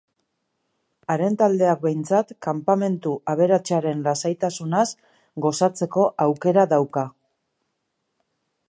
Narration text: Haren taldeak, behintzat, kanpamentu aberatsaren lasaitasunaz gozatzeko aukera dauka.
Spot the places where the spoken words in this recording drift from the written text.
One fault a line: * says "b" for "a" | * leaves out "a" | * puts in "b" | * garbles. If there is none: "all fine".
all fine